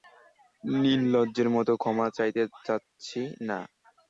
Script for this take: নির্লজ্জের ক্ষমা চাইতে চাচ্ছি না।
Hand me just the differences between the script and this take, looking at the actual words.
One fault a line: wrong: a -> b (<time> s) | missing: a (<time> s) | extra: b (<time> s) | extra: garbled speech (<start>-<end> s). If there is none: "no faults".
extra: মতো (1.6 s)